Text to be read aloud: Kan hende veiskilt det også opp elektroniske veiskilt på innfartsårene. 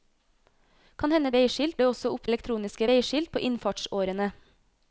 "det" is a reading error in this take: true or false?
false